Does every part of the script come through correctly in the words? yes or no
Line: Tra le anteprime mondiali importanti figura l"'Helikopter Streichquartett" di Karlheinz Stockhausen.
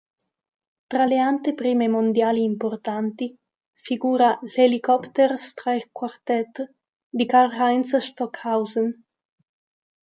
yes